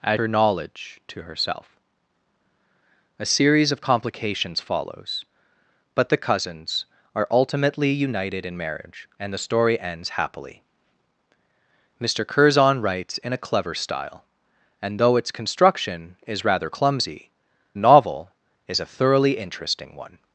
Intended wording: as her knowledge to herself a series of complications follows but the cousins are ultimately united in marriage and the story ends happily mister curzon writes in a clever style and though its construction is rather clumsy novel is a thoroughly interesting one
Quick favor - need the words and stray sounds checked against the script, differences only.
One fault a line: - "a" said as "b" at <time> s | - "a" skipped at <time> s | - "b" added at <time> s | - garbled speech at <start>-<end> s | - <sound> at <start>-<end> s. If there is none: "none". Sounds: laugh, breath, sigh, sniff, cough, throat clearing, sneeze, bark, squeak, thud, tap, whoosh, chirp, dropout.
none